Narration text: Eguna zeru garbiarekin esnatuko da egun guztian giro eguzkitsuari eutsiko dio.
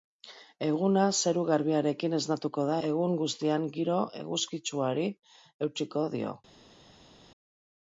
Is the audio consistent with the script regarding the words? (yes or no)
yes